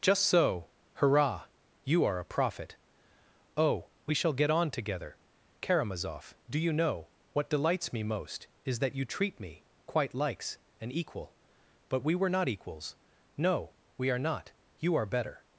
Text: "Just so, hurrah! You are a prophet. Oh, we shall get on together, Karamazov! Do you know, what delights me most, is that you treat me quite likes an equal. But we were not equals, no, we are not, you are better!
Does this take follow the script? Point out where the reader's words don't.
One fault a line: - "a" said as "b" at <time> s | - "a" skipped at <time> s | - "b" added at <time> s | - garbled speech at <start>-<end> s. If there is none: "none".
none